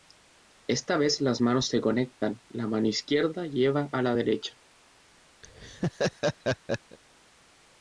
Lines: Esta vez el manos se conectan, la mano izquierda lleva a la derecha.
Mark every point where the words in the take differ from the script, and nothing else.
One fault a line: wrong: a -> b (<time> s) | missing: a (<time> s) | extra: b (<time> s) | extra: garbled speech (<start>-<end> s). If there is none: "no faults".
wrong: el -> las (1.2 s)